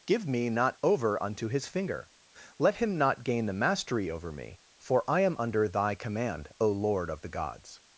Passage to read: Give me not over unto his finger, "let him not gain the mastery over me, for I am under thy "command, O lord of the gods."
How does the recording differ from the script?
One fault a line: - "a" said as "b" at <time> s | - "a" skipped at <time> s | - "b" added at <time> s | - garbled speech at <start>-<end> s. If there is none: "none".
none